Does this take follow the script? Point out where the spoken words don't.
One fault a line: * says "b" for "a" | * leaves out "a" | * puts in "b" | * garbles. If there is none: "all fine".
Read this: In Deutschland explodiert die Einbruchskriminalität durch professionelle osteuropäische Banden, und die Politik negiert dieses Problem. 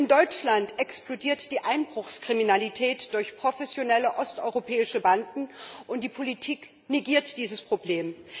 all fine